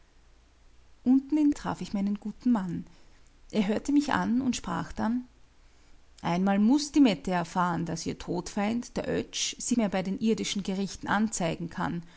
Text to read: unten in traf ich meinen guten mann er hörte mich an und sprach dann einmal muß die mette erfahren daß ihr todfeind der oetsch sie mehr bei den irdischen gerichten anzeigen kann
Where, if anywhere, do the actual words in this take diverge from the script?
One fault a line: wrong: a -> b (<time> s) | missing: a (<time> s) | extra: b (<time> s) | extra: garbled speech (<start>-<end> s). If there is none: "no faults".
no faults